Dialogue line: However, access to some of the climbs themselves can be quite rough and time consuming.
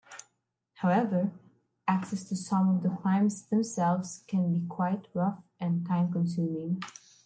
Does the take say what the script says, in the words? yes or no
yes